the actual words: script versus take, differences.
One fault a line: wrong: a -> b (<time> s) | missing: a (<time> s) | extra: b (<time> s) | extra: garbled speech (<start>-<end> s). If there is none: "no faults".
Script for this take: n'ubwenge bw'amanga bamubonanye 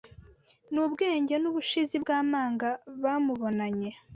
extra: n'ubushizi (1.4 s)